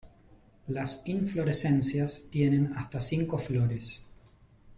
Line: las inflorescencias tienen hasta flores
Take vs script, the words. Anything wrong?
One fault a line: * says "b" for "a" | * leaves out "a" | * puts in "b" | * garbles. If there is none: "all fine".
* puts in "cinco"